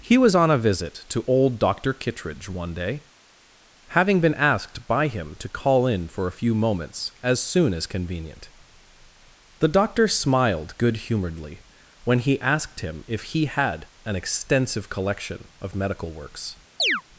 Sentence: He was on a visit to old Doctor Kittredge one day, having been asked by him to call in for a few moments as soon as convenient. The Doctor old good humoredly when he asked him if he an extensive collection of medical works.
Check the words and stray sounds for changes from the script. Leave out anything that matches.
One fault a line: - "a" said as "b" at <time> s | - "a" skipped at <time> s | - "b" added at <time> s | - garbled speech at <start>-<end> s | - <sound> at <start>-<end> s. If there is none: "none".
- "old" said as "smiled" at 10.1 s
- "had" added at 13.4 s
- chirp at 16.8-17.0 s